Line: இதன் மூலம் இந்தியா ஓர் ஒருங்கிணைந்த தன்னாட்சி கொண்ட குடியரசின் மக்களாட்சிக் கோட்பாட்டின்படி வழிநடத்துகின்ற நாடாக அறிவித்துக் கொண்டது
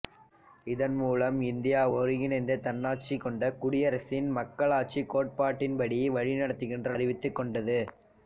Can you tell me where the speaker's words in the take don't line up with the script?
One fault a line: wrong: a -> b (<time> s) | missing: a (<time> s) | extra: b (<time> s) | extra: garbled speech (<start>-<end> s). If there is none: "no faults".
missing: ஓர் (1.8 s)
missing: நாடாக (6.9 s)